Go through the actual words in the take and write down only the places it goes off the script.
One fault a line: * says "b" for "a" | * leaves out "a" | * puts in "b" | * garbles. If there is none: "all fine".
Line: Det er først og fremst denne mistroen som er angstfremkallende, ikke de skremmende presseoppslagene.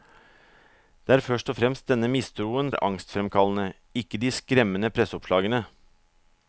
* leaves out "som"